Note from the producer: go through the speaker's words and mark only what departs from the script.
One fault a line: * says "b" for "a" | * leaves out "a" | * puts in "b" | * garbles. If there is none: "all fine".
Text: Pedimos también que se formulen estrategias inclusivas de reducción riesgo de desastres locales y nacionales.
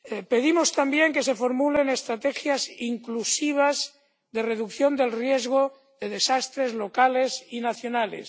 * puts in "del"